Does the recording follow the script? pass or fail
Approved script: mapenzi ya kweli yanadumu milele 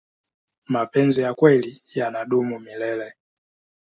pass